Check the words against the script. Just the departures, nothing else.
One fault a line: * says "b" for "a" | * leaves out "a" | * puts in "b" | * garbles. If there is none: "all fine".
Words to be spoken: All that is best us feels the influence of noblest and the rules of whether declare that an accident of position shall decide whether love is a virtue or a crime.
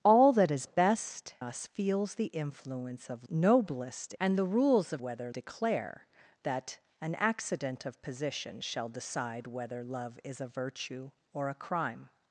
all fine